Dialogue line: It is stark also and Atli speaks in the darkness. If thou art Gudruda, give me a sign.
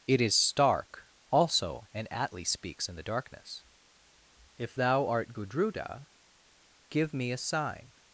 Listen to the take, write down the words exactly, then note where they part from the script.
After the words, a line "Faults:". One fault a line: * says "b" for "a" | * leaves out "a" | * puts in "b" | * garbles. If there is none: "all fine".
It is stark also and Atli speaks in the darkness. If thou art Gudruda, give me a sign.
Faults:
all fine